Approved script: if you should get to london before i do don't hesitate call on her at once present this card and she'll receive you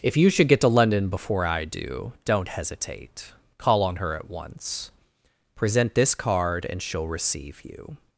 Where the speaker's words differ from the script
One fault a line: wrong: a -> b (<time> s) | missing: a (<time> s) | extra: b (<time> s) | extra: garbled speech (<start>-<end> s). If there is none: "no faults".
no faults